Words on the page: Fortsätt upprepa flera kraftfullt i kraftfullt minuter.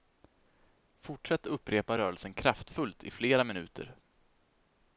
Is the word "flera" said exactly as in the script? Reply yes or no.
no